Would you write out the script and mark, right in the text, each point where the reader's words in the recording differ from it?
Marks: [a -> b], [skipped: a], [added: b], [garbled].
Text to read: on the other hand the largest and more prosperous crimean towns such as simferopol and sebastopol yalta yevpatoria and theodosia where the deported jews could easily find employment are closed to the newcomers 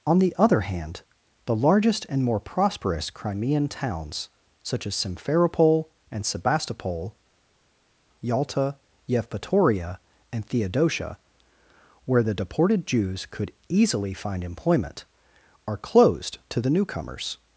on the other hand the largest and more prosperous crimean towns such as simferopol and sebastopol yalta yevpatoria and theodosia where the deported jews could easily find employment are closed to the newcomers